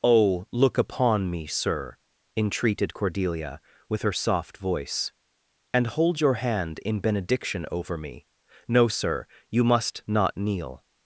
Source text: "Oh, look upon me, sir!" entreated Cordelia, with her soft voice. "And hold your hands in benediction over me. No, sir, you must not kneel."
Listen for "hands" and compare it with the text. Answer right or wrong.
wrong